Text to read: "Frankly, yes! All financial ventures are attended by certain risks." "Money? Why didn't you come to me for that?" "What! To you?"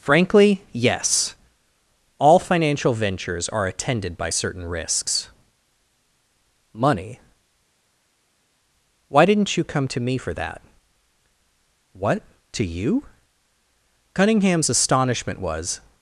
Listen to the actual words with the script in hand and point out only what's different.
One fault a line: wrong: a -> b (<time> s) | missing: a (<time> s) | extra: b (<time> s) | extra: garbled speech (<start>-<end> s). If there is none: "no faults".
extra: Cunningham's astonishment was (14.1 s)